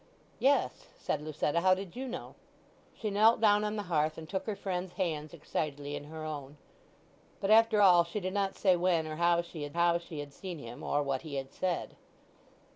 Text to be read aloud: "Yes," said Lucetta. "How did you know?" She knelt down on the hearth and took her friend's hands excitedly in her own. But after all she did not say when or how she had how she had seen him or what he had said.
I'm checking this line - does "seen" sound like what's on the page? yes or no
yes